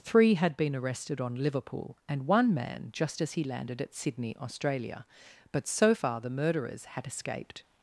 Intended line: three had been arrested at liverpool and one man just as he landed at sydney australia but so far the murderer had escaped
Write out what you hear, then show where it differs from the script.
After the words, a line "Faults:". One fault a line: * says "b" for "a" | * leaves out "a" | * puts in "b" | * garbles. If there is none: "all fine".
three had been arrested on liverpool and one man just as he landed at sydney australia but so far the murderers had escaped
Faults:
* says "on" for "at"
* says "murderers" for "murderer"